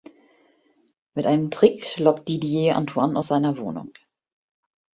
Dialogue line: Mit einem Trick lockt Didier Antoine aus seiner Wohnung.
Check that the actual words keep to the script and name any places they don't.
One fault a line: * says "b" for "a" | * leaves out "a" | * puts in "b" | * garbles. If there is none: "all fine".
all fine